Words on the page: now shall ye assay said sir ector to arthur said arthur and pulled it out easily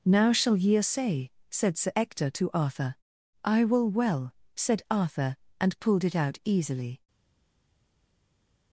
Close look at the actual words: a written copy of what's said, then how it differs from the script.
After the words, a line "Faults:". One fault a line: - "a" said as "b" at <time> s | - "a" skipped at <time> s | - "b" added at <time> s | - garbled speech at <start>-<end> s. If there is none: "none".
now shall ye assay said sir ector to arthur i will well said arthur and pulled it out easily
Faults:
- "i will well" added at 3.4 s